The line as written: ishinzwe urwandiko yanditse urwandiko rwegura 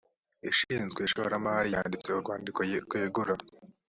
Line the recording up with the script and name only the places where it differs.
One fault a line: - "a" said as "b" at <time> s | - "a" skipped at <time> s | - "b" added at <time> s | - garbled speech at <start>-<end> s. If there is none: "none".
- "urwandiko" said as "ishoramari" at 1.1 s